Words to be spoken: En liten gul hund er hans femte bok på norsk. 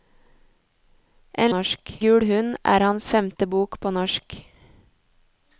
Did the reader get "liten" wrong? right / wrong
wrong